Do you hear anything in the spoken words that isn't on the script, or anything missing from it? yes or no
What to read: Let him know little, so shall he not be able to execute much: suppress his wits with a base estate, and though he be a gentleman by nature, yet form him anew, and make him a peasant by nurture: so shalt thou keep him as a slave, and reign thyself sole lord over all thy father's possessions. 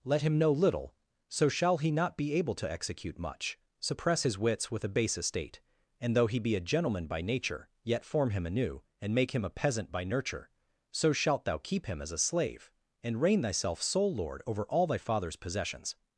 no